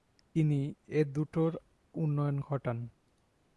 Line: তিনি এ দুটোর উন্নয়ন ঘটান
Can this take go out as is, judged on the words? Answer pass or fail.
pass